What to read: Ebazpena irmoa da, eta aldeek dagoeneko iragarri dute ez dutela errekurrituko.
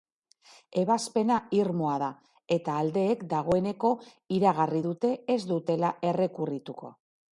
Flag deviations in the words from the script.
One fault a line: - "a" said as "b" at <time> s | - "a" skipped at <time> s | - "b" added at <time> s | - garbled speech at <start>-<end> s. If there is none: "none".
none